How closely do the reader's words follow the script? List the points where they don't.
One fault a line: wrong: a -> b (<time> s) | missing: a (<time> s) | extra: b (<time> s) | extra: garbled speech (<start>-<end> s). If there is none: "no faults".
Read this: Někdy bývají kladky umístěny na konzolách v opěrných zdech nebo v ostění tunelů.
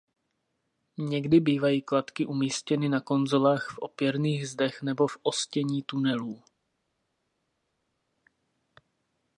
no faults